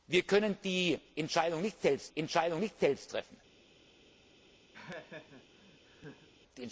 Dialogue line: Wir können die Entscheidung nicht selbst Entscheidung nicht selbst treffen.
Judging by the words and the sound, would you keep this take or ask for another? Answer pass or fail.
fail